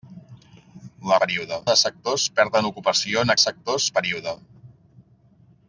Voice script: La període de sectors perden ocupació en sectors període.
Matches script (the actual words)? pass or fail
pass